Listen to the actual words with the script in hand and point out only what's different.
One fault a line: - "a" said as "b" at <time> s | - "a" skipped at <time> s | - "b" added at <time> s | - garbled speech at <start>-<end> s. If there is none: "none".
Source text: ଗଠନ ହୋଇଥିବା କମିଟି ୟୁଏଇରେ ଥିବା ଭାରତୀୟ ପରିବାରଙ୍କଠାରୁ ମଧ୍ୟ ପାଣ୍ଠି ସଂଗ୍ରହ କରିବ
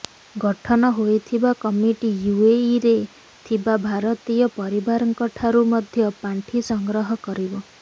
none